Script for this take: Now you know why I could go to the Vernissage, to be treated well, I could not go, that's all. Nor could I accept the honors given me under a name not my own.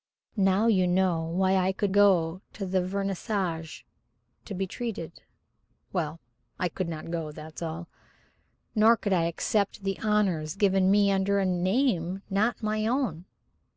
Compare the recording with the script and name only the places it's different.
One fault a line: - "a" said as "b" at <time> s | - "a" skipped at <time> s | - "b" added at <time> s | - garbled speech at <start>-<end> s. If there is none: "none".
none